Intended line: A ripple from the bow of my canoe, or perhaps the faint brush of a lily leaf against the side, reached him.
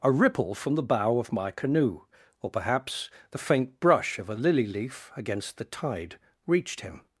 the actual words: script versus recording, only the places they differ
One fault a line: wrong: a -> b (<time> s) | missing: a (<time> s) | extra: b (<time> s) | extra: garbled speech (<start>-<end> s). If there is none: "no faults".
wrong: side -> tide (5.7 s)